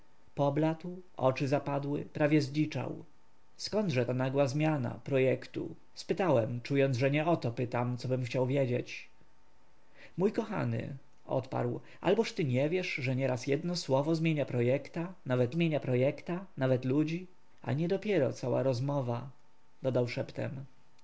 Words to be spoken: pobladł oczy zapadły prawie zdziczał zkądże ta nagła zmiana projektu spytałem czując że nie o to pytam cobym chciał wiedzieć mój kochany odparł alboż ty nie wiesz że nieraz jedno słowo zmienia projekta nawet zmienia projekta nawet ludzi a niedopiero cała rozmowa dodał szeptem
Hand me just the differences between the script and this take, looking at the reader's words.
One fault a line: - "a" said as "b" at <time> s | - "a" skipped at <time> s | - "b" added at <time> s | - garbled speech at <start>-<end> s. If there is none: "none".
none